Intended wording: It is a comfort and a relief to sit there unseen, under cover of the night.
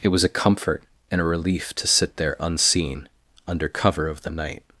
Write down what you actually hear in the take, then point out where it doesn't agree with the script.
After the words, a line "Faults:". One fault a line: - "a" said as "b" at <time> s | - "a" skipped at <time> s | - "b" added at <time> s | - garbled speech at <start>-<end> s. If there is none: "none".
It was a comfort and a relief to sit there unseen, under cover of the night.
Faults:
- "is" said as "was" at 0.1 s